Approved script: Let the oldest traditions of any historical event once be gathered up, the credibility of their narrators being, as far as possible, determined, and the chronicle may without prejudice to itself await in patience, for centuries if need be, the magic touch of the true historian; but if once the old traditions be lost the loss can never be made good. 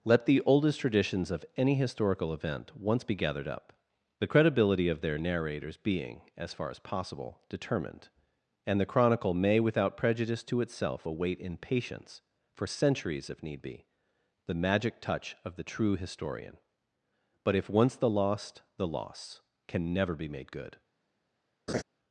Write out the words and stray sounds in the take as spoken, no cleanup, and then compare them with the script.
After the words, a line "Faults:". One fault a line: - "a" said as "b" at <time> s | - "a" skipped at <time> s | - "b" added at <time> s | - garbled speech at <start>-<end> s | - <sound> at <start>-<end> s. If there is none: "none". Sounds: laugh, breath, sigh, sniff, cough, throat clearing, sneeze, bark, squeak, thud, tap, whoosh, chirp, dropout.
Let the oldest traditions of any historical event once be gathered up, the credibility of their narrators being, as far as possible, determined, and the chronicle may without prejudice to itself await in patience, for centuries if need be, the magic touch of the true historian; but if once the lost the loss can never be made good.
Faults:
- "old traditions be" skipped at 18.1 s
- laugh at 21.7-21.8 s